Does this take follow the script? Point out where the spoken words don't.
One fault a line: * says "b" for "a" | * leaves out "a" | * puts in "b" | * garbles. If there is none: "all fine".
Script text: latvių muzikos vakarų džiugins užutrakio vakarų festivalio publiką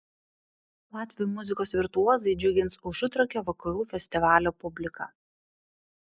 * says "virtuozai" for "vakarų"